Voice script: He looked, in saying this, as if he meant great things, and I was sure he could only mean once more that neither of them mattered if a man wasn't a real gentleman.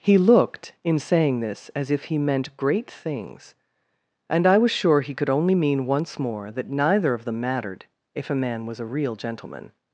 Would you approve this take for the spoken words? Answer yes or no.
no